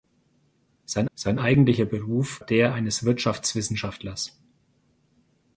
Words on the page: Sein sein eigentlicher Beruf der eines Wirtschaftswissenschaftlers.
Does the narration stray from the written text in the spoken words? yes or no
no